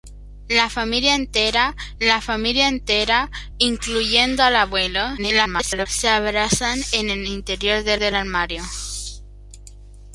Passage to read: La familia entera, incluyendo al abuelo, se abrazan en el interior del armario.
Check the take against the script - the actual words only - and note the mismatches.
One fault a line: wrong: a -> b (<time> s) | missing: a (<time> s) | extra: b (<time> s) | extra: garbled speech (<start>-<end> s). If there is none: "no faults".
extra: la familia entera (2.0 s)
extra: garbled speech (5.2-5.9 s)
extra: del (8.0 s)